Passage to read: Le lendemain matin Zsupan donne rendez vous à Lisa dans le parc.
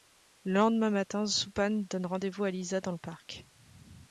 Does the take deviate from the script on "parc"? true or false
false